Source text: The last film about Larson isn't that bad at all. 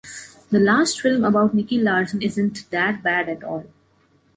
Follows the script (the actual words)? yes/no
no